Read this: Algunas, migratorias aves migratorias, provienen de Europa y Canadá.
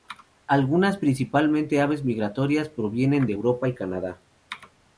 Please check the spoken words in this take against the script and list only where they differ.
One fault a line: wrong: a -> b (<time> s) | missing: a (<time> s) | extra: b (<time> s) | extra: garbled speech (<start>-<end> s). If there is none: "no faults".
wrong: migratorias -> principalmente (1.0 s)